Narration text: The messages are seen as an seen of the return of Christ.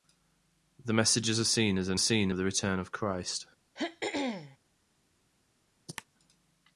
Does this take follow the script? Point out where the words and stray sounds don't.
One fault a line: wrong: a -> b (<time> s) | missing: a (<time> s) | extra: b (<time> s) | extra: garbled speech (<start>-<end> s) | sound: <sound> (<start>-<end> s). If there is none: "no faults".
sound: throat clearing (3.8-4.6 s)
sound: cough (5.9-6.0 s)